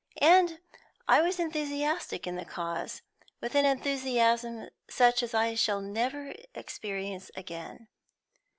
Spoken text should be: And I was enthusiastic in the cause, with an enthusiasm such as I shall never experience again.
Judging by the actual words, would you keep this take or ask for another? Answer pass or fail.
pass